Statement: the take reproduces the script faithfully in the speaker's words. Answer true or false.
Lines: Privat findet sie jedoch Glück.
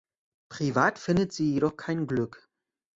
false